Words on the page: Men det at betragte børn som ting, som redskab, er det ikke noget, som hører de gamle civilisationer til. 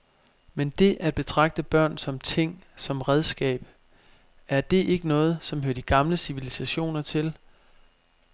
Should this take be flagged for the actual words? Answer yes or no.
no